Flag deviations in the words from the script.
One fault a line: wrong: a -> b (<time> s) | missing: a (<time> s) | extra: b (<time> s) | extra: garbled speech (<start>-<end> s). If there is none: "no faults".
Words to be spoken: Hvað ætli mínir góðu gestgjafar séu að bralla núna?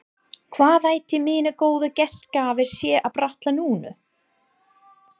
no faults